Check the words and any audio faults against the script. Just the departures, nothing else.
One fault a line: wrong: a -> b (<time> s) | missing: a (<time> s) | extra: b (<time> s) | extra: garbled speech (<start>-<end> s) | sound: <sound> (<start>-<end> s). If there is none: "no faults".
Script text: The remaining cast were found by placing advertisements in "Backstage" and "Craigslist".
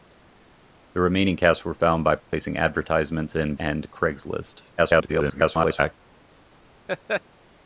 sound: dropout (2.2-2.3 s)
missing: Backstage (3.5 s)
extra: garbled speech (4.8-5.9 s)
sound: laugh (6.9-7.2 s)